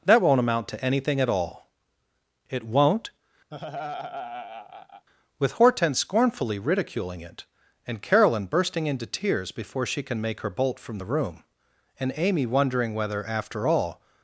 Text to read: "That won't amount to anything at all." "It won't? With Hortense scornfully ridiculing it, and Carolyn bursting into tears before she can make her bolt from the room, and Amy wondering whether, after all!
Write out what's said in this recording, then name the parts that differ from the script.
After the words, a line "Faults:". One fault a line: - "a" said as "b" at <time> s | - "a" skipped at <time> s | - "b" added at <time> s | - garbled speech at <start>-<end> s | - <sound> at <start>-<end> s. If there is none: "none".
"That won't amount to anything at all." "It won't? With Hortense scornfully ridiculing it, and Carolyn bursting into tears before she can make her bolt from the room, and Amy wondering whether, after all!
Faults:
- laugh at 3.5-5.1 s